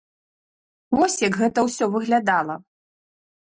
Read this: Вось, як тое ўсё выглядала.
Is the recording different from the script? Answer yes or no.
yes